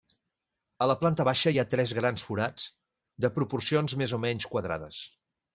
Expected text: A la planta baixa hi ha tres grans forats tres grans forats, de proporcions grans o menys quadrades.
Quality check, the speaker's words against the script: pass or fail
fail